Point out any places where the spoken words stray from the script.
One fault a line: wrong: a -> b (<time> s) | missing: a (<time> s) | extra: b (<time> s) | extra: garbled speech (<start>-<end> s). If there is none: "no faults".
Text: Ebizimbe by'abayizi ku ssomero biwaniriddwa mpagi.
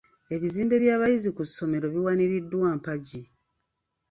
no faults